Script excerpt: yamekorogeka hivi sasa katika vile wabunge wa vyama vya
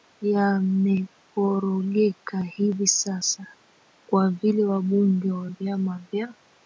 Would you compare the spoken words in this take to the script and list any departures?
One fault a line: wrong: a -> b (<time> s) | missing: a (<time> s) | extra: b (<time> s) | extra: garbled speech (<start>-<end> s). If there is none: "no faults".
wrong: katika -> kwa (4.1 s)